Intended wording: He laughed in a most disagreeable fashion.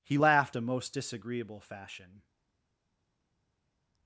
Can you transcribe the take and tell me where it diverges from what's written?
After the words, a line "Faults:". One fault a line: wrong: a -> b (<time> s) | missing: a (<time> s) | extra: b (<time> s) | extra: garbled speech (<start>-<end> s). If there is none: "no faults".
He laughed a most disagreeable fashion.
Faults:
missing: in (0.6 s)